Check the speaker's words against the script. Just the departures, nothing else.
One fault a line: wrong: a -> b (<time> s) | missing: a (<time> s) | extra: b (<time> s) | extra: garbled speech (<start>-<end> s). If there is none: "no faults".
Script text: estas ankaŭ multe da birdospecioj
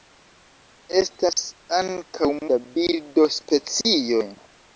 missing: multe (2.3 s)